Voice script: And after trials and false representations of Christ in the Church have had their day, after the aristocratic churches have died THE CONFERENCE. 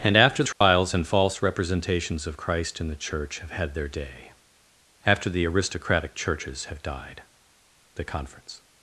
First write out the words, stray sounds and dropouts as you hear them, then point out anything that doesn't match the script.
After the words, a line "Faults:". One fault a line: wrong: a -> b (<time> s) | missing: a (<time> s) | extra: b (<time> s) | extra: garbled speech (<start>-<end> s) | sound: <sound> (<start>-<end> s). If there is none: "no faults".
And after trials and false representations of Christ in the Church have had their day, after the aristocratic churches have died THE CONFERENCE.
Faults:
sound: dropout (0.5-0.6 s)